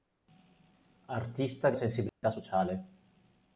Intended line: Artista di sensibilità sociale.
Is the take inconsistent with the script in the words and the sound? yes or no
yes